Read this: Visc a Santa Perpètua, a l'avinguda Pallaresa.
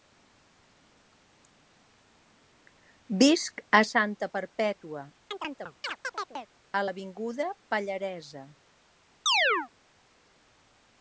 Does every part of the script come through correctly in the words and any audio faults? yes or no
no